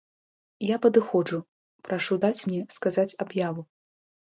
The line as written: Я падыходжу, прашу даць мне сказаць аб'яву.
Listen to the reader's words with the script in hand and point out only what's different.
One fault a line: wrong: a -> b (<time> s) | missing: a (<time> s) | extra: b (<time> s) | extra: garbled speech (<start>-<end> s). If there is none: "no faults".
no faults